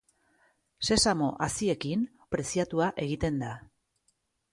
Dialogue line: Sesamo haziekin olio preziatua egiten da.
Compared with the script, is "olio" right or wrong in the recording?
wrong